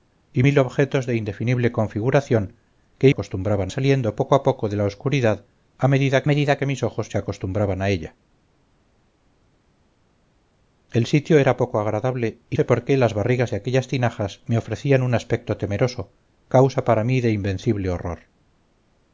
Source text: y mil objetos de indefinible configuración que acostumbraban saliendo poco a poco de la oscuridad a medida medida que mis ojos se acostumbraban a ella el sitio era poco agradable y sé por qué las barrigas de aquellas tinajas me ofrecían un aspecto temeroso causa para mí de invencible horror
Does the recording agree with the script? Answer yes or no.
yes